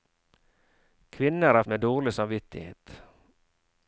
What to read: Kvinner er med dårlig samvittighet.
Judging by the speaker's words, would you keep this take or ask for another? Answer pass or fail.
pass